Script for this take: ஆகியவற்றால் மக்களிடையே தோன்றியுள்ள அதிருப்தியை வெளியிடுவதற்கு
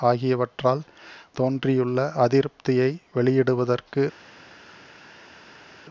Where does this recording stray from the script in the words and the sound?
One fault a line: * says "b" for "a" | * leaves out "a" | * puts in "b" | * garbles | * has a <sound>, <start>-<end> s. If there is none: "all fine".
* leaves out "மக்களிடையே"